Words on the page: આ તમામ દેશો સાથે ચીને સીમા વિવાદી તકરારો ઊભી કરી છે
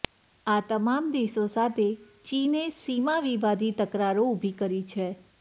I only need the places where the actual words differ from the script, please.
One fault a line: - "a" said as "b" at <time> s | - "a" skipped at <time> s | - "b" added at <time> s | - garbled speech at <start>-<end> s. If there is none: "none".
none